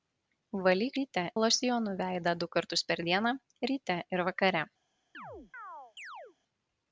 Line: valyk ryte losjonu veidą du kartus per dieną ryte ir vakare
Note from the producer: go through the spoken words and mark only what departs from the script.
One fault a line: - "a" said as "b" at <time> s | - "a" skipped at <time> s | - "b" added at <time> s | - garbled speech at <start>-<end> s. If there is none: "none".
none